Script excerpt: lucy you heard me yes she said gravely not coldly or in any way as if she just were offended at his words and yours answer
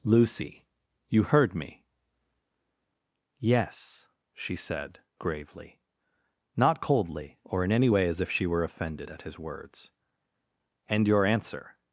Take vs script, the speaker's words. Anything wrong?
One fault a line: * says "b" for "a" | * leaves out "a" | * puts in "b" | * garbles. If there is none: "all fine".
* leaves out "just"
* says "your" for "yours"